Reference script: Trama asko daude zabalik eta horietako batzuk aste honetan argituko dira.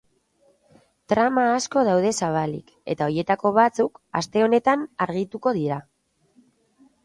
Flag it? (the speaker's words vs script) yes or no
no